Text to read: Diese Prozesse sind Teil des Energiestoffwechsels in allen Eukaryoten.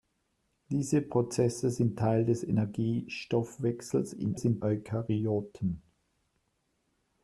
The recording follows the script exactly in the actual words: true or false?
false